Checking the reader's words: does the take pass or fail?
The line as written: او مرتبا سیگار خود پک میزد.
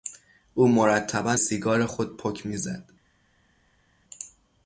pass